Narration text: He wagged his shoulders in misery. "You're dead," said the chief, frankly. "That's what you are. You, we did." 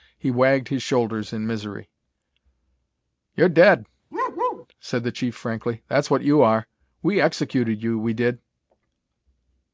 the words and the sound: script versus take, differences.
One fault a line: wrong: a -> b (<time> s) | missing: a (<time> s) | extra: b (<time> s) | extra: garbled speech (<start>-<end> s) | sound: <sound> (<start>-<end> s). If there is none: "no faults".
sound: bark (4.1-4.7 s)
extra: We executed (7.0 s)